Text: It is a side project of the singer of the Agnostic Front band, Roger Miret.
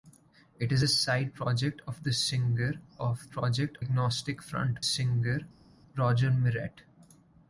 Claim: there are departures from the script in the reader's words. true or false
true